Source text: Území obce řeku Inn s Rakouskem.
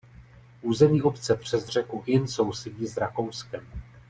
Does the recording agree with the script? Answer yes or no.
no